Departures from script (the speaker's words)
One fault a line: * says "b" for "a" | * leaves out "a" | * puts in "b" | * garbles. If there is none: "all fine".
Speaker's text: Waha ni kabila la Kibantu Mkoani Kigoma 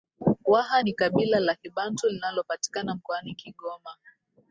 * puts in "linalopatikana"